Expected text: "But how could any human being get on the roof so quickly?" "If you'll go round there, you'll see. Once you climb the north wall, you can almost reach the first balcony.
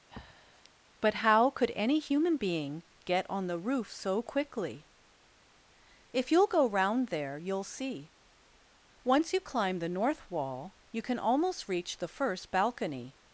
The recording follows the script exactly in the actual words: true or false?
true